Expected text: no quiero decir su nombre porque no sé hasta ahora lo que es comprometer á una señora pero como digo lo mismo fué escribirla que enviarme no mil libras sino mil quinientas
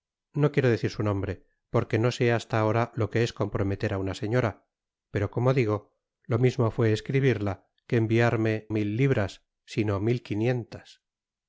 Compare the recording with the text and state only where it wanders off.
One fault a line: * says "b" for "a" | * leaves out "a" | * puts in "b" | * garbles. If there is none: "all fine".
* leaves out "no"